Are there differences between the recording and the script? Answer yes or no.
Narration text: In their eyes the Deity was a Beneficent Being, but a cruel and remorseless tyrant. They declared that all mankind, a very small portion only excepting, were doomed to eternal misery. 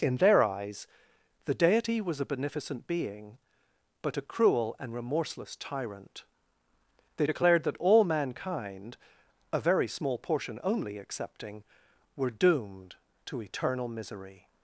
no